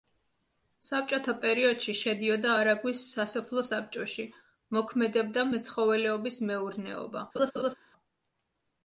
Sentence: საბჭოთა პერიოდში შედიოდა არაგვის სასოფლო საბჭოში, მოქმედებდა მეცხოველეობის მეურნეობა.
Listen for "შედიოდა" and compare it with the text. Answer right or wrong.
right